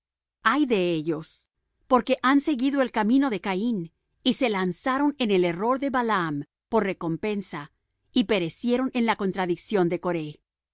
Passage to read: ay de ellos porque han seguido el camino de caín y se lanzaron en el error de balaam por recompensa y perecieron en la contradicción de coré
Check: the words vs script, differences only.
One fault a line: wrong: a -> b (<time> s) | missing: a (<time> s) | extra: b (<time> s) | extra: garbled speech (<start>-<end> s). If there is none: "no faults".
no faults